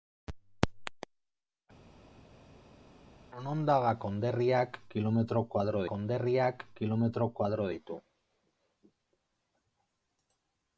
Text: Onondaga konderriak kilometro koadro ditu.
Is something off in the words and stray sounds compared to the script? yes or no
yes